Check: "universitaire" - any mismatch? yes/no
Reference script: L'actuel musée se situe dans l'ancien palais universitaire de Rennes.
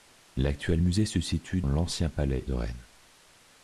yes